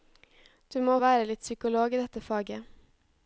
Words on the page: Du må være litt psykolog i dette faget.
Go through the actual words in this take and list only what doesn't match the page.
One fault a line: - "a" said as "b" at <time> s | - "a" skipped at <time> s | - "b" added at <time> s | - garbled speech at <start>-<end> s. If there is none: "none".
none